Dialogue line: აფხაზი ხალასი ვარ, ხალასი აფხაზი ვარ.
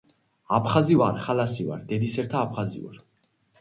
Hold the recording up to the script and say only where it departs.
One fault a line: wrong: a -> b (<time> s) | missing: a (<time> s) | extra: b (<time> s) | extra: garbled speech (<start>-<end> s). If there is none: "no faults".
extra: ვარ (1.0 s)
wrong: ხალასი -> დედისერთა (1.9 s)